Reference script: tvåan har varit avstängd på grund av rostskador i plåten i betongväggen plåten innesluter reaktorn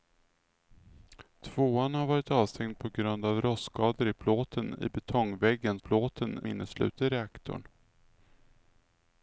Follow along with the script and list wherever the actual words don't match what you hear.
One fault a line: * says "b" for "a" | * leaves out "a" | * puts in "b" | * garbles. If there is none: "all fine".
all fine